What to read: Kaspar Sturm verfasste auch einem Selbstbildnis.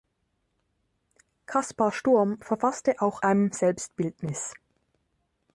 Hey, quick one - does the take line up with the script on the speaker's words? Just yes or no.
yes